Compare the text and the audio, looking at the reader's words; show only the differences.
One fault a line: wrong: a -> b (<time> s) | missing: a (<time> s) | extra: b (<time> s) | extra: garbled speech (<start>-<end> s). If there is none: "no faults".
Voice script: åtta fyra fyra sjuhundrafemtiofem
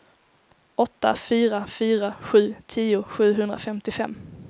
extra: sju tio (2.2 s)